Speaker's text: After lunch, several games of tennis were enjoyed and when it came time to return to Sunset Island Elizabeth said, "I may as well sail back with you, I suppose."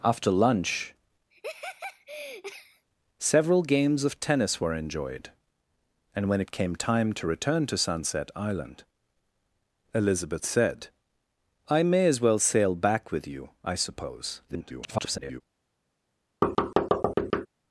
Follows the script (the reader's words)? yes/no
no